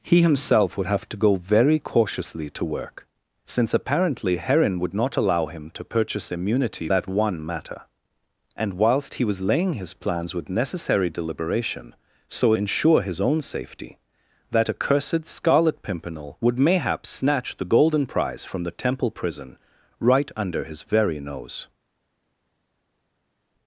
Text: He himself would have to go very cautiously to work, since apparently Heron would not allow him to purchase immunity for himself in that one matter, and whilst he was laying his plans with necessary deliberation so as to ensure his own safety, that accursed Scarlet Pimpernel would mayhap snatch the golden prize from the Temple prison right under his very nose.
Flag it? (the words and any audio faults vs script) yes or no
yes